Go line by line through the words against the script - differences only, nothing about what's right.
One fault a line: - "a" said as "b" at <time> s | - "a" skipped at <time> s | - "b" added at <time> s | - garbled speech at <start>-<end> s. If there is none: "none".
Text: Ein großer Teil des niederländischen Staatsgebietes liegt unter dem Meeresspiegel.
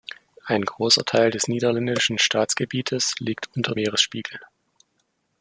- "dem" skipped at 3.8 s